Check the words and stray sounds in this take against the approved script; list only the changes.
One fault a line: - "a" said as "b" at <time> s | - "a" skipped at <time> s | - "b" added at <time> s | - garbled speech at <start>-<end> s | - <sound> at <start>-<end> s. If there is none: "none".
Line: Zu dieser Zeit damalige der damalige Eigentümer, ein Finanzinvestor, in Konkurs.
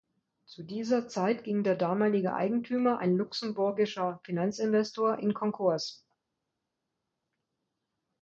- "damalige" said as "ging" at 1.4 s
- "luxemburgischer" added at 3.2 s